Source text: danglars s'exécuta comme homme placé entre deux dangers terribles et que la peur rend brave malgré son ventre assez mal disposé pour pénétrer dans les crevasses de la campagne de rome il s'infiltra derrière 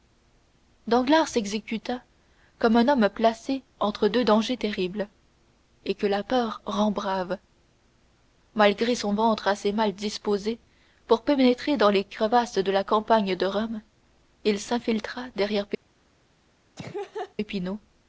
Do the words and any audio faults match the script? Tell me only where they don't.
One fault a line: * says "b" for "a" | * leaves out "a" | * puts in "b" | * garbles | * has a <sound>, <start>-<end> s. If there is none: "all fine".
* puts in "un"
* has a laugh, 16.8-17.3 s